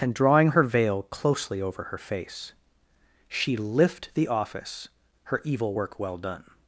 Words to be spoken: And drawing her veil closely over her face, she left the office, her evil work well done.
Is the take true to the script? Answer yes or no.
no